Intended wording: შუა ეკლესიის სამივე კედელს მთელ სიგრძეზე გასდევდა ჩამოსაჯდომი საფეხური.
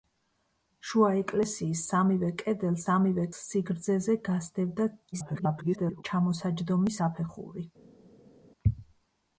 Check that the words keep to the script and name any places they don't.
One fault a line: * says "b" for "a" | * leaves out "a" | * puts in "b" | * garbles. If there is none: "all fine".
* says "სამივე" for "მთელ"
* garbles